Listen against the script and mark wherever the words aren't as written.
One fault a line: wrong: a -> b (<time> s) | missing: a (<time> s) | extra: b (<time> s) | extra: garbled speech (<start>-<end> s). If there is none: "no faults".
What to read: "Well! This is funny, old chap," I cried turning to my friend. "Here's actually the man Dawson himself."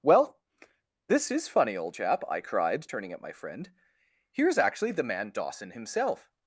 wrong: to -> at (3.1 s)